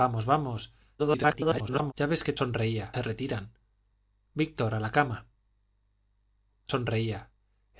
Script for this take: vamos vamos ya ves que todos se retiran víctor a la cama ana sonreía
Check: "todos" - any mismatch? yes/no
yes